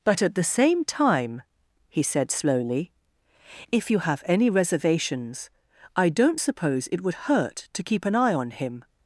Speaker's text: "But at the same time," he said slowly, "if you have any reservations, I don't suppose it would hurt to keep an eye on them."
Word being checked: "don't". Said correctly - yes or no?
yes